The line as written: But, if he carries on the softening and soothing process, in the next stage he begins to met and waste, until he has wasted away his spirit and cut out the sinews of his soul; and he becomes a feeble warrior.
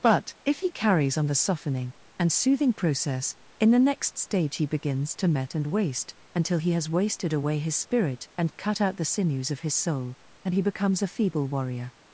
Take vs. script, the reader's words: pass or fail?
pass